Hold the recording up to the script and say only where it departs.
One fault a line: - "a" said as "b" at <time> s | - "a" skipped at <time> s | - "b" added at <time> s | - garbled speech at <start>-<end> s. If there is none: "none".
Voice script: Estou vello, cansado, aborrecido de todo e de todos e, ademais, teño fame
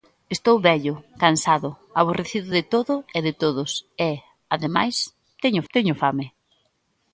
- "teño" added at 5.7 s